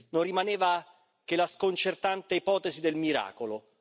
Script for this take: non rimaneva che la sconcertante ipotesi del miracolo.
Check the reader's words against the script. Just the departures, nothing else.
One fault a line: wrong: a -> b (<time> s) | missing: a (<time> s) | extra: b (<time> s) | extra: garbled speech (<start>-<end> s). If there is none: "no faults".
no faults